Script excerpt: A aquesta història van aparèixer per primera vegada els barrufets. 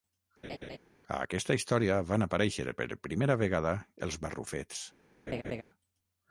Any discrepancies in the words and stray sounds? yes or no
yes